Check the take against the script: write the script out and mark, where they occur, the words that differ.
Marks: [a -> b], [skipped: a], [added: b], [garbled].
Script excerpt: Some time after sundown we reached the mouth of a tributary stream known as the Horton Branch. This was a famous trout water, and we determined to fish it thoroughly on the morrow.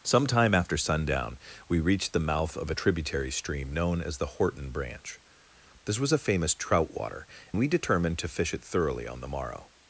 Some time after sundown we reached the mouth of a tributary stream known as the Horton Branch. This was a famous trout water, [skipped: and] we determined to fish it thoroughly on the morrow.